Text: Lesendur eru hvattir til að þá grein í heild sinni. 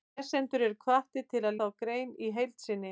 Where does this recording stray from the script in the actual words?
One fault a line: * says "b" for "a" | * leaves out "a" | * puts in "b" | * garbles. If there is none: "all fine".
all fine